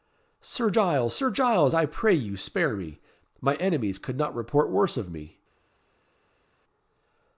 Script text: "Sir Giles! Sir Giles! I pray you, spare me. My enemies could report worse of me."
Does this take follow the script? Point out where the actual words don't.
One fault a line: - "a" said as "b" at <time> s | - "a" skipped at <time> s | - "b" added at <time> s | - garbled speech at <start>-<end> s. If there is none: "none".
- "not" added at 4.2 s